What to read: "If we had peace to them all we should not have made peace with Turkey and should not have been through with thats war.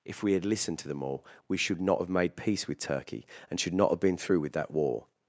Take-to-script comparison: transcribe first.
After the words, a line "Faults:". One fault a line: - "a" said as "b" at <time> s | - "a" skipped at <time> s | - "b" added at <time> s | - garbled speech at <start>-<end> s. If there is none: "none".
"If we had listened to them all we should not have made peace with Turkey and should not have been through with that war.
Faults:
- "peace" said as "listened" at 0.5 s
- "thats" said as "that" at 4.5 s